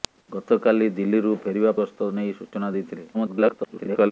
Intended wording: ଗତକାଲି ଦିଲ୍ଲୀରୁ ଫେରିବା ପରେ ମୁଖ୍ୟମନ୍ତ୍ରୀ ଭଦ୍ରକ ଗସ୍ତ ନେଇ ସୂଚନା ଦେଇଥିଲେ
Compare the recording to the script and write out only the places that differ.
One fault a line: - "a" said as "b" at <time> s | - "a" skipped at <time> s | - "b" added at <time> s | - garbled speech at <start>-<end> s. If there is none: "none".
- "ପରେ ମୁଖ୍ୟମନ୍ତ୍ରୀ ଭଦ୍ରକ" skipped at 1.8 s
- garbled speech at 3.1-4.1 s